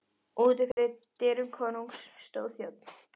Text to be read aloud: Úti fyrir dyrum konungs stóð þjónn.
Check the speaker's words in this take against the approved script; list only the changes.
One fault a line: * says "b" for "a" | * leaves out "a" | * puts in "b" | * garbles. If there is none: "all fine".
all fine